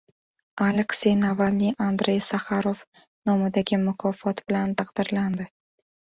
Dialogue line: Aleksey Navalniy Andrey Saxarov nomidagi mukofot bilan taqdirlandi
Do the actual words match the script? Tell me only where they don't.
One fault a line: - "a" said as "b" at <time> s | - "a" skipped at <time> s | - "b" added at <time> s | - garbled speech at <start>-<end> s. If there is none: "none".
none